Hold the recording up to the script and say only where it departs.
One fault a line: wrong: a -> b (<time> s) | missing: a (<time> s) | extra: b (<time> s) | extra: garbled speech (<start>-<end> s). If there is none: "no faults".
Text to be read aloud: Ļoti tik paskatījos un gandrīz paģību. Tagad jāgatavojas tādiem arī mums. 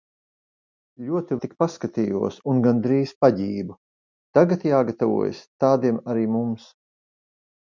no faults